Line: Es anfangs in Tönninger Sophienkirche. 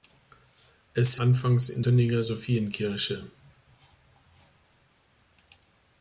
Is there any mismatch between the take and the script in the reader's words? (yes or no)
no